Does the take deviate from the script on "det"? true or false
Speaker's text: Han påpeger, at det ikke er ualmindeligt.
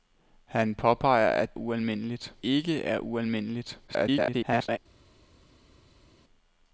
true